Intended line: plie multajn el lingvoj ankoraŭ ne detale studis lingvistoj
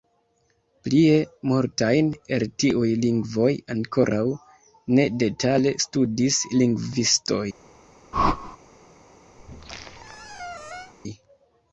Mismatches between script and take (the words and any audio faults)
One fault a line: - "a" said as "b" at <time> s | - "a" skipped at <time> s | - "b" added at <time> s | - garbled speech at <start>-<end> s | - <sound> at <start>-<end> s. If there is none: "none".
- "tiuj" added at 2.6 s
- whoosh at 8.1-8.6 s
- squeak at 9.4-10.9 s